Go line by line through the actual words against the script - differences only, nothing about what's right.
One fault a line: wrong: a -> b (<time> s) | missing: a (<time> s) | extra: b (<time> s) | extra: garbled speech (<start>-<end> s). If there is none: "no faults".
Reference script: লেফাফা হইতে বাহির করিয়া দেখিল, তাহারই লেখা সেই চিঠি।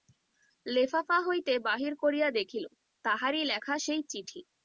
no faults